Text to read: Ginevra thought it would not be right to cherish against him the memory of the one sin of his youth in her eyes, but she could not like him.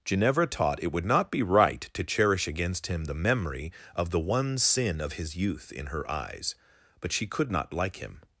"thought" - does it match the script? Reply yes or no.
no